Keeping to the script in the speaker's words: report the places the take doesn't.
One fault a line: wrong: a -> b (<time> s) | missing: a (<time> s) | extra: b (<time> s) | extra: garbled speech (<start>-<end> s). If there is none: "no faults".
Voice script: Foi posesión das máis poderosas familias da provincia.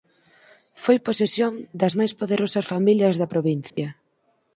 no faults